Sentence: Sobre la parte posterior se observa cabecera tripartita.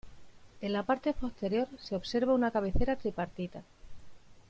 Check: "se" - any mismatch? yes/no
no